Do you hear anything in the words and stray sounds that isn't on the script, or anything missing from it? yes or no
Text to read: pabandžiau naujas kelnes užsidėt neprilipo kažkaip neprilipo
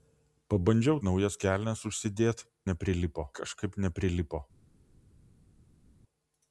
no